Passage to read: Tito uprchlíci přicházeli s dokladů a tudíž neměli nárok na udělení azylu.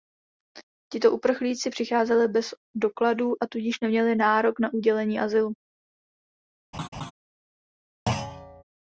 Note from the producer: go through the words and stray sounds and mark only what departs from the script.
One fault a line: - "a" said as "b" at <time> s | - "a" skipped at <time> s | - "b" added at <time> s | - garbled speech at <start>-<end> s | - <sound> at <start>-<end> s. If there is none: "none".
- "s" said as "bez" at 2.3 s
- laugh at 6.7-7.1 s
- thud at 8.1-8.6 s